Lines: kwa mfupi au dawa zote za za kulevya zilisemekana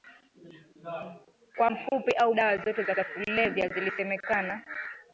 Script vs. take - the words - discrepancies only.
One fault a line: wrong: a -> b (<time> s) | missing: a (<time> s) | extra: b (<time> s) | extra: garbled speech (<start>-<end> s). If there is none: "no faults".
no faults